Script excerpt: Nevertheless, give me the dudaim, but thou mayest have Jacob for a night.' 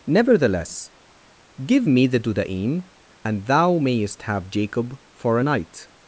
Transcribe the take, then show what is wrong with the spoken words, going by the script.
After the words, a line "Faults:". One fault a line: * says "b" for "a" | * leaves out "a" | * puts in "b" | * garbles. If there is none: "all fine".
Nevertheless, give me the dudaim, and thou mayest have Jacob for a night.'
Faults:
* says "and" for "but"